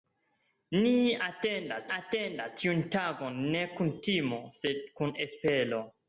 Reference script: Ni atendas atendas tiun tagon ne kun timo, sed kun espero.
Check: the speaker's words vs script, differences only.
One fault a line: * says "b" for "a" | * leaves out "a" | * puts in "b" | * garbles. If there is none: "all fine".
all fine